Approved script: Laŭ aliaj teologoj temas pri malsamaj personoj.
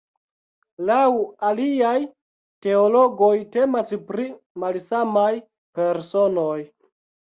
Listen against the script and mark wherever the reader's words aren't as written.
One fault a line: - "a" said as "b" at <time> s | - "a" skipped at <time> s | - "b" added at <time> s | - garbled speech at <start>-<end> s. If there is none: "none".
none